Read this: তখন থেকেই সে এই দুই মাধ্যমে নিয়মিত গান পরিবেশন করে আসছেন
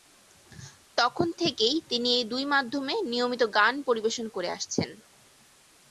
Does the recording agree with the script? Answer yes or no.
no